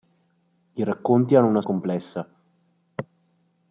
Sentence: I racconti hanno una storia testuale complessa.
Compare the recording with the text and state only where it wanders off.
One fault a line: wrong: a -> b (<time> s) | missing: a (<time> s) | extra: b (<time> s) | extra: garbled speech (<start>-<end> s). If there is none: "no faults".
missing: storia testuale (1.6 s)